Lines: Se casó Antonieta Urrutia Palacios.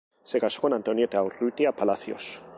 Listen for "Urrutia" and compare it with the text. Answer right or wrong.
right